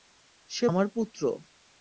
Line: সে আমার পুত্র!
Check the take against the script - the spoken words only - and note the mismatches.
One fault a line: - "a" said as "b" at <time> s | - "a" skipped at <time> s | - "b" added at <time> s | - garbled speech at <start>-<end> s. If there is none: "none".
none